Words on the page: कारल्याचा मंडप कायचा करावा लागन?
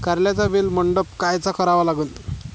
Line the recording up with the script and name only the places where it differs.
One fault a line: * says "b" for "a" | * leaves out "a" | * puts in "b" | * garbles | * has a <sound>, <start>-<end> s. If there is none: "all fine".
* puts in "वेल"